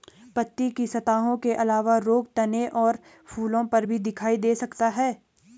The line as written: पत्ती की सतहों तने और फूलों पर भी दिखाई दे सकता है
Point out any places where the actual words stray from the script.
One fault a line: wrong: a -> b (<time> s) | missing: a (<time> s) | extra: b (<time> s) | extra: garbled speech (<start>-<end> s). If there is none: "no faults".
extra: के अलावा रोग (1.4 s)